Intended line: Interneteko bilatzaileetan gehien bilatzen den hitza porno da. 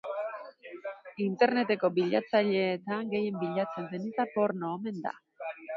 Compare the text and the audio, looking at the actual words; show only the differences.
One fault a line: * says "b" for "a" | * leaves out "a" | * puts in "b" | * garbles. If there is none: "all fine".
* puts in "omen"